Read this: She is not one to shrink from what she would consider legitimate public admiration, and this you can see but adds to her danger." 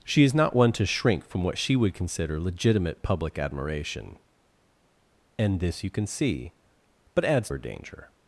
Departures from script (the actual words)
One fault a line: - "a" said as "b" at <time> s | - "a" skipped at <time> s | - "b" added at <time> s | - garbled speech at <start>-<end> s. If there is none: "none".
- "to" skipped at 7.5 s